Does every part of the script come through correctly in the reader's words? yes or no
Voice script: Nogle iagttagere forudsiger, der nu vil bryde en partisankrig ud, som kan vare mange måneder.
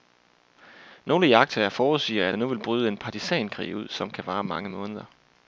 yes